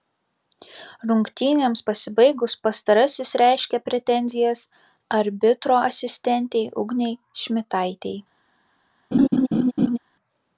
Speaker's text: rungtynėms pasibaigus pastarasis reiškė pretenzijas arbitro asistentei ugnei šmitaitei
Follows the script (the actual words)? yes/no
yes